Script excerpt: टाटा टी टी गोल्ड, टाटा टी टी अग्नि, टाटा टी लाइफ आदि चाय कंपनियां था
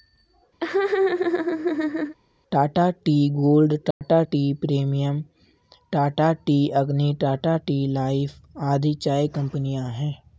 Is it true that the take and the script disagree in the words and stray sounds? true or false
true